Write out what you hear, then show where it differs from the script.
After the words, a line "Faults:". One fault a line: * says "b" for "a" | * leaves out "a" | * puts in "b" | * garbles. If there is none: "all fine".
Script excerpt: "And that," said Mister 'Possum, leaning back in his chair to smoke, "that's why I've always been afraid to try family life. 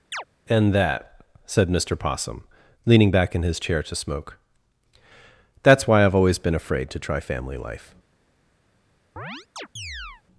"And that," said Mister 'Possum, leaning back in his chair to smoke, "that's why I've always been afraid to try family life.
Faults:
all fine